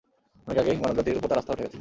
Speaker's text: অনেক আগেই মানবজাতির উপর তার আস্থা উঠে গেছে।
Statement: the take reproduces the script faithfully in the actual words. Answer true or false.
true